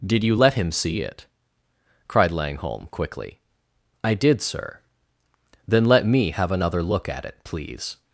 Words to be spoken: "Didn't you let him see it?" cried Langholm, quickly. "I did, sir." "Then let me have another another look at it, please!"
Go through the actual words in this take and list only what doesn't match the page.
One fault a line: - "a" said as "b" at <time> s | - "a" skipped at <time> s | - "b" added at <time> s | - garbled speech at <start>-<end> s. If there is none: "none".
- "Didn't" said as "Did" at 0.0 s
- "another" skipped at 6.8 s